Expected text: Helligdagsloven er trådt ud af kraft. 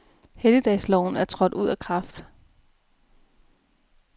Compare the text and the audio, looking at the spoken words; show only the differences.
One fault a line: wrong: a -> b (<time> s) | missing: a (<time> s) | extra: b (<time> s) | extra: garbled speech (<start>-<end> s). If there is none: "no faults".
no faults